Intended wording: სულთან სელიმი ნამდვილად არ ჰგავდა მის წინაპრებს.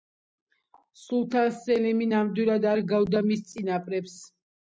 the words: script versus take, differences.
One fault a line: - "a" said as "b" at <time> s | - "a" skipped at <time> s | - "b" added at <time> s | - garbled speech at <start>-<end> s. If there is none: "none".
none